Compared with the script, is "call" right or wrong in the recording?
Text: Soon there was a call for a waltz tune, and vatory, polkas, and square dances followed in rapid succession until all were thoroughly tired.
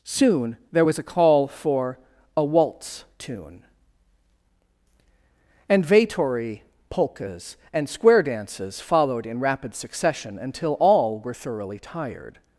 right